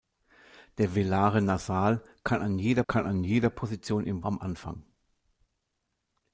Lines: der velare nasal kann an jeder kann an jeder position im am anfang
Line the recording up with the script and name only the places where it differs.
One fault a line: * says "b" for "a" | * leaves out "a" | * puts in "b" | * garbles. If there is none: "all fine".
all fine